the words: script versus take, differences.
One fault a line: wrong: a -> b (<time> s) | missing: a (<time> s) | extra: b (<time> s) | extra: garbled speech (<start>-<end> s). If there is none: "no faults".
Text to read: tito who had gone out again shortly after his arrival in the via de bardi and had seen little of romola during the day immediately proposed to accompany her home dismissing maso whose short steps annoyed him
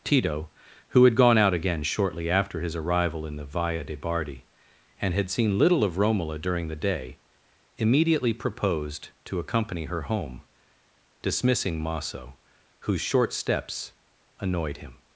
no faults